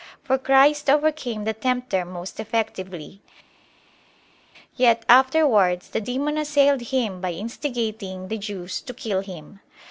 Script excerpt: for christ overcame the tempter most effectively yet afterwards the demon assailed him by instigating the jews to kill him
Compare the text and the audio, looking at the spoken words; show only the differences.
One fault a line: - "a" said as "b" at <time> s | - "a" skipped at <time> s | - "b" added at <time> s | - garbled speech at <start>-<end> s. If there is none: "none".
none